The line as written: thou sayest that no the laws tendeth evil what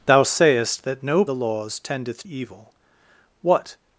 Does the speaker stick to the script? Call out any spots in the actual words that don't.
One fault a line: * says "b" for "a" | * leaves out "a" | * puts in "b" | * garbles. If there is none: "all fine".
all fine